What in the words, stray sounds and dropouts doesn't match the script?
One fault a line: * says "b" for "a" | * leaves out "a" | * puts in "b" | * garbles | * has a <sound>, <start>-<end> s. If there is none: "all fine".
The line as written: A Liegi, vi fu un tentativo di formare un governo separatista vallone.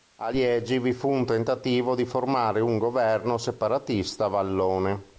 all fine